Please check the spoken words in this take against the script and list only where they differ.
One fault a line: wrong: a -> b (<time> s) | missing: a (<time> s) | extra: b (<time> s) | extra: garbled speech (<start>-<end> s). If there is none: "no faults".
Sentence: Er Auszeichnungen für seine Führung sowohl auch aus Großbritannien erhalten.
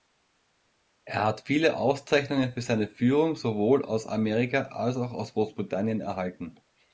extra: hat viele (1.2 s)
extra: aus Amerika als (3.9 s)